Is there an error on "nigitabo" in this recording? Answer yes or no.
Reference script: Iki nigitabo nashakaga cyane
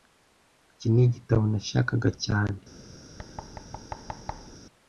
no